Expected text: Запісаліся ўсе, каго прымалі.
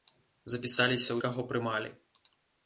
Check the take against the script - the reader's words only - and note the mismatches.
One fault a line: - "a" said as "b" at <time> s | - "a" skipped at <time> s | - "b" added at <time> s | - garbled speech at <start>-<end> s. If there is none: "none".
- "ўсе" skipped at 1.2 s